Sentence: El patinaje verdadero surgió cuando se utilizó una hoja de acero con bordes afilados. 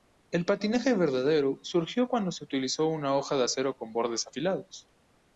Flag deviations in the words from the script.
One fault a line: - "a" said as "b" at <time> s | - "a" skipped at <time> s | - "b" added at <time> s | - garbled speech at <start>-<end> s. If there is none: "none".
none